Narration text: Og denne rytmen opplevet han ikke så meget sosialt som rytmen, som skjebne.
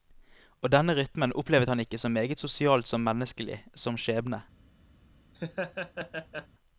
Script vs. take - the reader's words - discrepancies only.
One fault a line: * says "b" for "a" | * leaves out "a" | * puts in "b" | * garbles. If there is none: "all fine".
* says "menneskelig" for "rytmen"